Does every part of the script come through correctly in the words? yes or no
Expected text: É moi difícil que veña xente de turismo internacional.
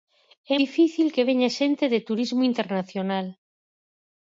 no